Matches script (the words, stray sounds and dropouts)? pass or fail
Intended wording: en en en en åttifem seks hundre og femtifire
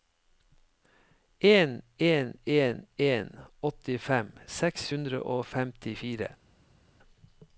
pass